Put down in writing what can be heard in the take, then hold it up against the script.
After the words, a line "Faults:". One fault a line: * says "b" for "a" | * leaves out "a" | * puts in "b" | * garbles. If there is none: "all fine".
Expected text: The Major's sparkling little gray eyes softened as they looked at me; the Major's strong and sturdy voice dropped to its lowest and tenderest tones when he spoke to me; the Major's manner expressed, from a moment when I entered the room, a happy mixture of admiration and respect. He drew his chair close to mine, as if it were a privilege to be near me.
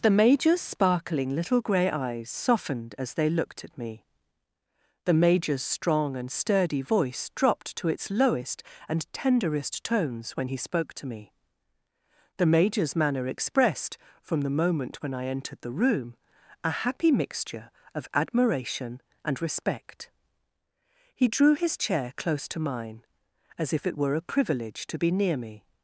The Major's sparkling little gray eyes softened as they looked at me; the Major's strong and sturdy voice dropped to its lowest and tenderest tones when he spoke to me; the Major's manner expressed, from the moment when I entered the room, a happy mixture of admiration and respect. He drew his chair close to mine, as if it were a privilege to be near me.
Faults:
* says "the" for "a"